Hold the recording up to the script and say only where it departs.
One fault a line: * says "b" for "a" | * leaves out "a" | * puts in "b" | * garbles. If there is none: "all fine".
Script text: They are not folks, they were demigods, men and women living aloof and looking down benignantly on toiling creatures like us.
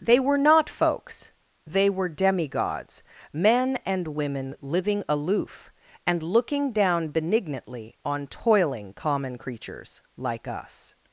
* says "were" for "are"
* puts in "common"